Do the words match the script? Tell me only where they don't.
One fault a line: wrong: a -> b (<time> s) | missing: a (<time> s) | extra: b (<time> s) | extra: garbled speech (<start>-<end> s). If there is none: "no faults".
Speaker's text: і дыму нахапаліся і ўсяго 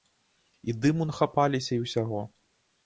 no faults